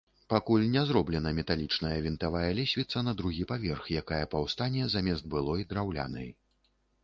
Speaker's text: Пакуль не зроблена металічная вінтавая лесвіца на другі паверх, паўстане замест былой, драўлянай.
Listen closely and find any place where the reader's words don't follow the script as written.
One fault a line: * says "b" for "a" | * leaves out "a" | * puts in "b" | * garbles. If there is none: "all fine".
* puts in "якая"